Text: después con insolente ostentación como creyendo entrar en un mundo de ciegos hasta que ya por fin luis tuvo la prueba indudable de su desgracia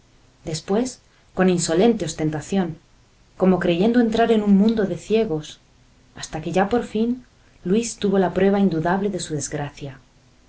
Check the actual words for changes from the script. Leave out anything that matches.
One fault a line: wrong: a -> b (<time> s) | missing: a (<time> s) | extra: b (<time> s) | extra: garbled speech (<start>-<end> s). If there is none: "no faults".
no faults